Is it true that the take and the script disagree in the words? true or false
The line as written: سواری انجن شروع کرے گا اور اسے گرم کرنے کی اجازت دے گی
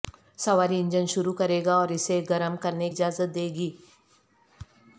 true